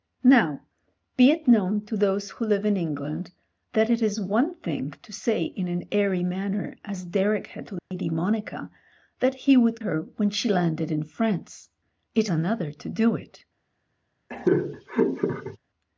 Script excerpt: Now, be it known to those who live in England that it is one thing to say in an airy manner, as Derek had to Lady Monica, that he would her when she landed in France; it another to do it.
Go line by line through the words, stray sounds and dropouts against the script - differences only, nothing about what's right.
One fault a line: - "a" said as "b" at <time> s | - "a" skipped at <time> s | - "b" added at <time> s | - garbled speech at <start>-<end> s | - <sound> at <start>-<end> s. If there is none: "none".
- dropout at 7.8-7.9 s
- laugh at 14.3-15.6 s